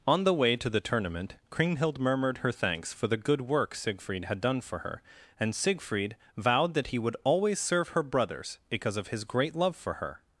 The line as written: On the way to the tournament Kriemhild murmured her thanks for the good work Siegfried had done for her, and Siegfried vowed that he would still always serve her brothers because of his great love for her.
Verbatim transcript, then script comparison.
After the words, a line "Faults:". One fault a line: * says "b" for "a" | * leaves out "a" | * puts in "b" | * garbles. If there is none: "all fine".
On the way to the tournament Kriemhild murmured her thanks for the good work Siegfried had done for her, and Siegfried vowed that he would always serve her brothers because of his great love for her.
Faults:
* leaves out "still"